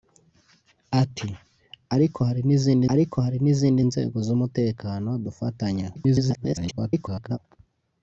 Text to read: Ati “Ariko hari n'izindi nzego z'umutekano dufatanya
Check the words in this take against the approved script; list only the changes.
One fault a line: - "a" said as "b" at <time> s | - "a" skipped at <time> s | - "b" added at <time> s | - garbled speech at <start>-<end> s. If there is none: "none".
- "ariko hari n'izindi" added at 2.9 s
- garbled speech at 6.0-7.4 s